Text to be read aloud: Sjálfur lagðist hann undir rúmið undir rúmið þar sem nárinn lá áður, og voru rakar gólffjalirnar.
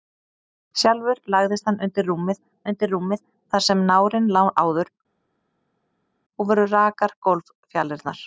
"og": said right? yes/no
yes